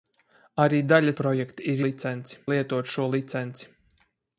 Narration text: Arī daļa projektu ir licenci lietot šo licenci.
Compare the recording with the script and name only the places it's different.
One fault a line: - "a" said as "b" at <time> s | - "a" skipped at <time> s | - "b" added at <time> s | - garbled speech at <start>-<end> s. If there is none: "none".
none